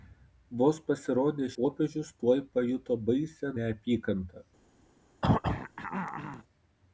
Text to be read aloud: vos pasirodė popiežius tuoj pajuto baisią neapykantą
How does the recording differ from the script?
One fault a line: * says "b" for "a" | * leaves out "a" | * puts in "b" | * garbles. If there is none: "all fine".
all fine